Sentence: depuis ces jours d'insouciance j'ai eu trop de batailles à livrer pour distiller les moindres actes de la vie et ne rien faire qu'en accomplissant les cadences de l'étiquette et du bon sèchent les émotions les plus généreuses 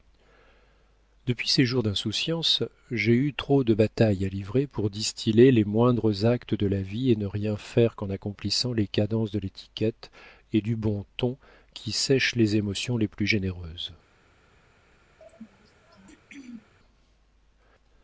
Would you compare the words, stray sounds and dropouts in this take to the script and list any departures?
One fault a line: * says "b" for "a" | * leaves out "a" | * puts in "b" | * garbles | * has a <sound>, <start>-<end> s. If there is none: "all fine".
* puts in "ton qui"
* has a throat clearing, 15.2-16.7 s